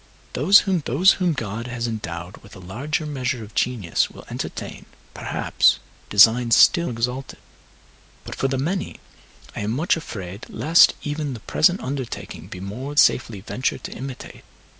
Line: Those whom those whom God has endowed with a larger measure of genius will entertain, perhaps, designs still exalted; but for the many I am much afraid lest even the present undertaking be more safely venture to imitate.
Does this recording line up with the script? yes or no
yes